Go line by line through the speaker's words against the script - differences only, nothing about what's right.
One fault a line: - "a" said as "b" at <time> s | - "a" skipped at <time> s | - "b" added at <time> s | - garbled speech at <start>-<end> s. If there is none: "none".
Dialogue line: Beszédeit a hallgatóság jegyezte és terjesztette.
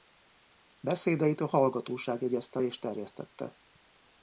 none